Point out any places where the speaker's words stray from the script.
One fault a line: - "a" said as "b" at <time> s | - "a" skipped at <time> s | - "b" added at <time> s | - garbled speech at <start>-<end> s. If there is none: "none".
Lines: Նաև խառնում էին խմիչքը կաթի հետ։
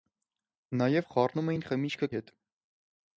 - "կաթի" skipped at 2.1 s